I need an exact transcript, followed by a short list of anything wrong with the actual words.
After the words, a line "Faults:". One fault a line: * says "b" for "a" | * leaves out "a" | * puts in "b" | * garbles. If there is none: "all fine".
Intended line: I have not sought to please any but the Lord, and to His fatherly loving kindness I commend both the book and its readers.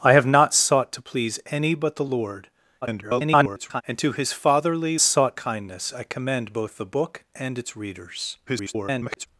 I have not sought to please any but the Lord, [garbled] and to His fatherly sought kindness I commend both the book and its readers. [garbled]
Faults:
* garbles
* says "sought" for "loving"
* garbles